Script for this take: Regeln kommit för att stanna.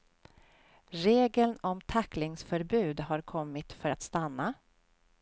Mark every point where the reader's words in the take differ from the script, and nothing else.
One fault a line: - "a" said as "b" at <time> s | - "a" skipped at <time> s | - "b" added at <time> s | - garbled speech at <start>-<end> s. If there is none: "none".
- "om tacklingsförbud har" added at 1.6 s